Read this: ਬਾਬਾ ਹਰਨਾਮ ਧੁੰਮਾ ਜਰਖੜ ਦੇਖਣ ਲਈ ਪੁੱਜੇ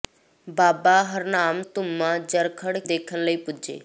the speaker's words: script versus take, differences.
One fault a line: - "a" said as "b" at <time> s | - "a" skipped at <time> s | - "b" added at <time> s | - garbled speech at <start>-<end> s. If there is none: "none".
none